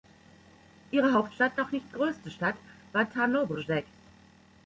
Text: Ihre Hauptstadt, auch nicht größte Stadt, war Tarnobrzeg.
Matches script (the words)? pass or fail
pass